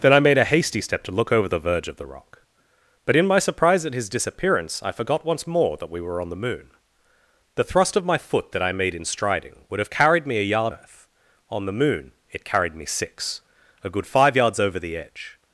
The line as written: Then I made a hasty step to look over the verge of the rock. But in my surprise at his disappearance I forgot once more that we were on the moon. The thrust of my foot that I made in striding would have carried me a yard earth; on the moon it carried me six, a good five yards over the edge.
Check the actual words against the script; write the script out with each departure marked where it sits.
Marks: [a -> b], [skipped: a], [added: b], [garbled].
Then I made a hasty step to look over the verge of the rock. But in my surprise at his disappearance I forgot once more that we were on the moon. The thrust of my foot that I made in striding would have carried me a yard earth; on the moon it carried me six, a good five yards over the edge.